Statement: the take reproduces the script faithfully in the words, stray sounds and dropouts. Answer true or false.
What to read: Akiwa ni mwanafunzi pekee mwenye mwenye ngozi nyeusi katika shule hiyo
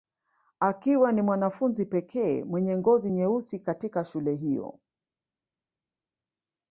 false